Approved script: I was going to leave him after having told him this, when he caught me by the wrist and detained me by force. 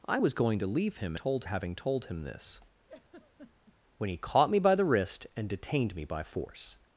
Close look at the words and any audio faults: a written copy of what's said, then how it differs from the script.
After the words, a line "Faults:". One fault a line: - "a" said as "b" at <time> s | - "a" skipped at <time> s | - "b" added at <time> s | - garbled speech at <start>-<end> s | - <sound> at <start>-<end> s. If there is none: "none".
I was going to leave him told having told him this, when he caught me by the wrist and detained me by force.
Faults:
- "after" said as "told" at 1.1 s
- laugh at 2.9-3.8 s